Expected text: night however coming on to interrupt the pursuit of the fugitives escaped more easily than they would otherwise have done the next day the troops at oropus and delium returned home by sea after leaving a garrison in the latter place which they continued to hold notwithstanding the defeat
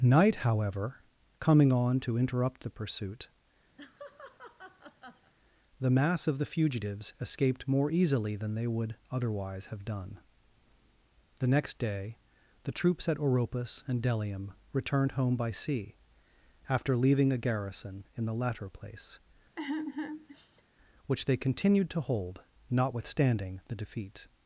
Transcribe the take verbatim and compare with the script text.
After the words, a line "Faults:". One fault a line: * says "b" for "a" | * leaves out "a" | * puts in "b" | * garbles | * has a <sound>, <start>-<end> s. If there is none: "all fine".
night however coming on to interrupt the pursuit the mass of the fugitives escaped more easily than they would otherwise have done the next day the troops at oropus and delium returned home by sea after leaving a garrison in the latter place which they continued to hold notwithstanding the defeat
Faults:
* has a laugh, 3.8-5.3 s
* puts in "the mass"
* has a sigh, 19.6-20.6 s